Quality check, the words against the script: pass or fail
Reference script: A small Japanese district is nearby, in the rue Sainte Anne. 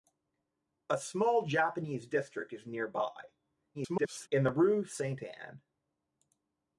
fail